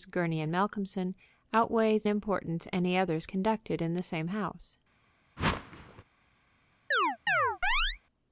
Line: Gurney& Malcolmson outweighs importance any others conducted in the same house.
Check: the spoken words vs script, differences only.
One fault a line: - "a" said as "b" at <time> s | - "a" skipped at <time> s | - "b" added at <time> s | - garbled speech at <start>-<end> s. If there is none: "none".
none